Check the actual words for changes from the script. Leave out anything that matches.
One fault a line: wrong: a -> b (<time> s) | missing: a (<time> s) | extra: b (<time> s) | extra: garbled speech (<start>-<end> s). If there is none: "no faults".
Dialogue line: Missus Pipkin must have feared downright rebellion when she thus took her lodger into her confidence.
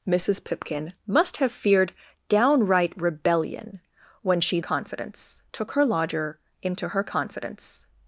wrong: thus -> confidence (4.6 s)